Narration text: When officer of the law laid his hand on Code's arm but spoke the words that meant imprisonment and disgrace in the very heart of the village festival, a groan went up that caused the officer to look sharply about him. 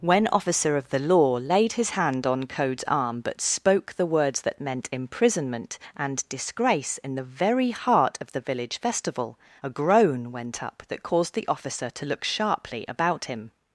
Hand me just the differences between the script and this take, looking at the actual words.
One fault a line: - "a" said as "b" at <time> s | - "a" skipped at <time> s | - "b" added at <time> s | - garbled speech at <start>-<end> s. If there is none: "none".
none